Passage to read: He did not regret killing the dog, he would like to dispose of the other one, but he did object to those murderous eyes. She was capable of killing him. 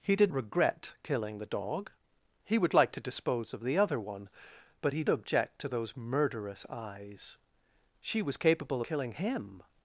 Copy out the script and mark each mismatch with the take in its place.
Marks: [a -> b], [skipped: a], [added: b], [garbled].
He did [skipped: not] regret killing the dog, he would like to dispose of the other one, but he [skipped: did] object to those murderous eyes. She was capable [skipped: of] killing him.